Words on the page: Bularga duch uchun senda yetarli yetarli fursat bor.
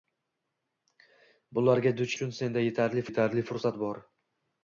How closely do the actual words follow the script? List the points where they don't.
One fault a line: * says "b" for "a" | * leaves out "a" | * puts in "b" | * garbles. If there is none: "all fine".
all fine